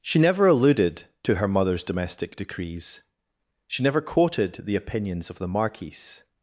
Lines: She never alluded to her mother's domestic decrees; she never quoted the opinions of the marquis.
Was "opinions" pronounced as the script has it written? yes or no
yes